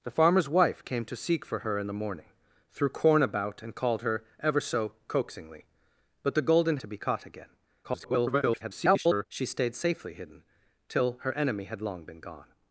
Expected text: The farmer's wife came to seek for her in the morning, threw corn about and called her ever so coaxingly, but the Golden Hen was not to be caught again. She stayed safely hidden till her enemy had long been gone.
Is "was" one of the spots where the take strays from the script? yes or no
yes